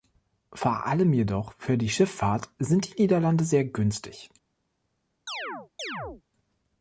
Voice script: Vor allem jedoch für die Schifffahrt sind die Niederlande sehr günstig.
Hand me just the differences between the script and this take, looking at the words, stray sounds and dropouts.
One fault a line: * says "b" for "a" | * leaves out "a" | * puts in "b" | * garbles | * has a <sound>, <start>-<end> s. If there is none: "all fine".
* has a chirp, 5.3-6.2 s